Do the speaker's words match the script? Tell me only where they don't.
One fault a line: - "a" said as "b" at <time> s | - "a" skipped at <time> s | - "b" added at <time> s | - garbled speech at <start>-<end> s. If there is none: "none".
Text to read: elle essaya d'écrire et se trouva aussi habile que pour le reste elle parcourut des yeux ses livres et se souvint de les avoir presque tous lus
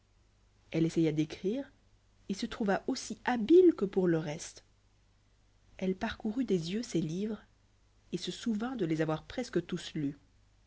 none